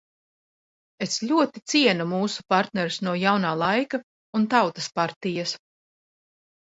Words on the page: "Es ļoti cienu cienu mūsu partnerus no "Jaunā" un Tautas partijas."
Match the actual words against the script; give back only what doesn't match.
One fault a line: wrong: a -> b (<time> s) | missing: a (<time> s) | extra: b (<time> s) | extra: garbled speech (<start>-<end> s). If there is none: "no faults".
missing: cienu (2.1 s)
extra: laika (3.6 s)